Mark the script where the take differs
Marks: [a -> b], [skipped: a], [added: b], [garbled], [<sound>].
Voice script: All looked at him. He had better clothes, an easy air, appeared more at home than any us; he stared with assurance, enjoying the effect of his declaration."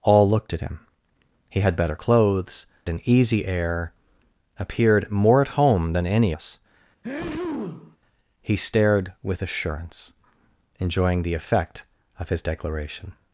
All looked at him. He had better clothes, an easy air, appeared more at home than any us; [sneeze] he stared with assurance, enjoying the effect of his declaration."